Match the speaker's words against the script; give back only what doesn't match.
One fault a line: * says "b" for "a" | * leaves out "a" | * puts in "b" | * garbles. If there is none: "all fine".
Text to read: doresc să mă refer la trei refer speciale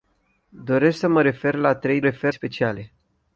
all fine